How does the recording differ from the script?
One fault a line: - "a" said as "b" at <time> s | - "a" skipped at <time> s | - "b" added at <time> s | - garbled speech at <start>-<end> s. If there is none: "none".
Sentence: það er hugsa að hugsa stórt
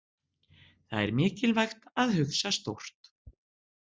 - "hugsa" said as "mikilvægt" at 1.2 s